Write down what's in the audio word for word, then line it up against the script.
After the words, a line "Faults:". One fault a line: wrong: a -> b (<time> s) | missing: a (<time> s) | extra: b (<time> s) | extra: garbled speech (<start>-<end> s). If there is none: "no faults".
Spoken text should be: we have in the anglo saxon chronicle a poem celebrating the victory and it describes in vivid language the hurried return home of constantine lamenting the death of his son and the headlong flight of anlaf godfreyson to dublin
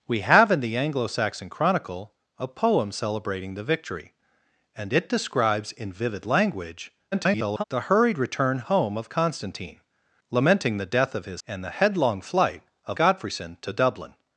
we have in the anglo saxon chronicle a poem celebrating the victory and it describes in vivid language [garbled] the hurried return home of constantine lamenting the death of his and the headlong flight of godfreyson to dublin
Faults:
extra: garbled speech (7.1-7.6 s)
missing: son (11.4 s)
missing: anlaf (13.0 s)